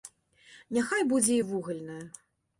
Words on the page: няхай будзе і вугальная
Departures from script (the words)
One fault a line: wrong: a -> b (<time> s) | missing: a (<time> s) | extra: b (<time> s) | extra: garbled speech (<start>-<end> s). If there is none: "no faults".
no faults